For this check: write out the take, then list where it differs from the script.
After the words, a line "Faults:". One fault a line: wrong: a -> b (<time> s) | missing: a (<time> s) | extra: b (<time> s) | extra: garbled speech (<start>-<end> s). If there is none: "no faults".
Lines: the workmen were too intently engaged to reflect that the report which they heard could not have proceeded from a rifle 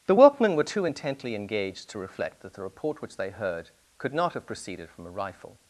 the workmen were too intently engaged to reflect that the report which they heard could not have proceeded from a rifle
Faults:
no faults